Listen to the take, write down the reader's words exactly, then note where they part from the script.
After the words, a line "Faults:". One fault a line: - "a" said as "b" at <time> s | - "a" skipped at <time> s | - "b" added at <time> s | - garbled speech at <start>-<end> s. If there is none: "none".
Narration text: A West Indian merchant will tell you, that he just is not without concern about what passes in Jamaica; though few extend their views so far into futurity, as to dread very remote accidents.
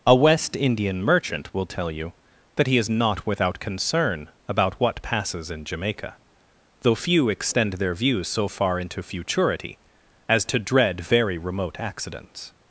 A West Indian merchant will tell you, that he is not without concern about what passes in Jamaica; though few extend their views so far into futurity, as to dread very remote accidents.
Faults:
- "just" skipped at 2.8 s